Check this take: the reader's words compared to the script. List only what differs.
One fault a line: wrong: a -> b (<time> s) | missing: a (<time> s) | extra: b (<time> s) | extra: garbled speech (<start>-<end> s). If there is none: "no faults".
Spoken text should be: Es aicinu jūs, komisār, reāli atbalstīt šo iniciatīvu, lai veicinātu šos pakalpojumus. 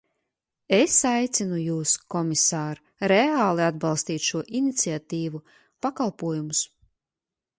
missing: lai veicinātu šos (5.4 s)